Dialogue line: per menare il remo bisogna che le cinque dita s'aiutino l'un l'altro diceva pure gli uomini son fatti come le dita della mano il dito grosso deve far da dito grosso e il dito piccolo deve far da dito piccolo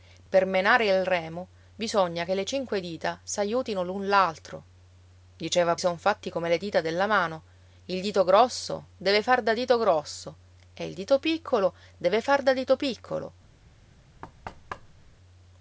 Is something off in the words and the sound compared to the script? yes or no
yes